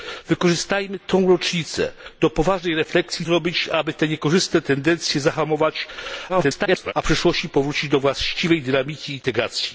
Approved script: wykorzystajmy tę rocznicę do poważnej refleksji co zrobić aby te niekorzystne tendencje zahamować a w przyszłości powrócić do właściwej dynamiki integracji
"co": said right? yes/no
no